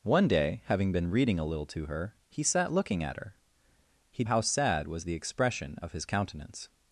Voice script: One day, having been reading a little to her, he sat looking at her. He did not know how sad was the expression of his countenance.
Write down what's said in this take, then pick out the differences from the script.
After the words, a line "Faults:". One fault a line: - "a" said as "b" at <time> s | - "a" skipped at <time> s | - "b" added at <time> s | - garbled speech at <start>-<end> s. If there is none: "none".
One day, having been reading a little to her, he sat looking at her. He how sad was the expression of his countenance.
Faults:
- "did not know" skipped at 4.2 s